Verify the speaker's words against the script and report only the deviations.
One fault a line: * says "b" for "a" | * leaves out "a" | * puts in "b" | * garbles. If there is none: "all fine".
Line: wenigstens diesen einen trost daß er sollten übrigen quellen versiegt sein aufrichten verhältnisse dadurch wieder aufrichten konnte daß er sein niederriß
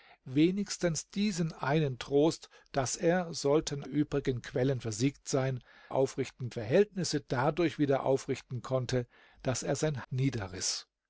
all fine